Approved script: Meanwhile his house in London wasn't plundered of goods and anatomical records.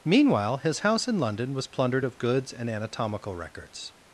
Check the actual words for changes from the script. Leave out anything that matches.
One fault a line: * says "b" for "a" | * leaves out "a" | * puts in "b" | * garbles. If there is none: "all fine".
* says "was" for "wasn't"